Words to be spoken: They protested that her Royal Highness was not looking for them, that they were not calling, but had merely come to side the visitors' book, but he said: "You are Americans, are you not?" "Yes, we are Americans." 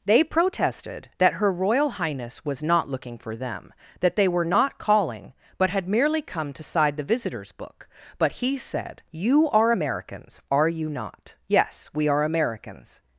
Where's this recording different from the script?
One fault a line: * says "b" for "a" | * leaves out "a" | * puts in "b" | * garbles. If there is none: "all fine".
all fine